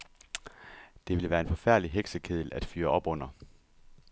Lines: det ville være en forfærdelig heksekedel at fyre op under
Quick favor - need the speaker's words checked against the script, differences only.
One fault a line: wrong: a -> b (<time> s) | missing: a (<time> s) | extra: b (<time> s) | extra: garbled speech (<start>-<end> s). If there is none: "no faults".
no faults